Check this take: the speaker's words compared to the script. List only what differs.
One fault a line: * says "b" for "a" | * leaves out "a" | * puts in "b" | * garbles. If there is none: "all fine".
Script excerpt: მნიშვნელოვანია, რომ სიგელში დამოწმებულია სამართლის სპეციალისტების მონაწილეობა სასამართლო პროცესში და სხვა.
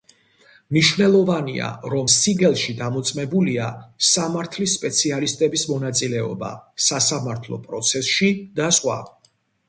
all fine